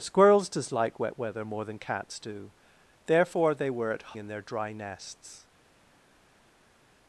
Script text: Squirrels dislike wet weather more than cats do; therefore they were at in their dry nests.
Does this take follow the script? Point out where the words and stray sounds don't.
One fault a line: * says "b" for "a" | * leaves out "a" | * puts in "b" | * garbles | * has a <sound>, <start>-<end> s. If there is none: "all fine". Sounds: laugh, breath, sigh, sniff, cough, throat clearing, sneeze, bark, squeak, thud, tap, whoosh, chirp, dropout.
all fine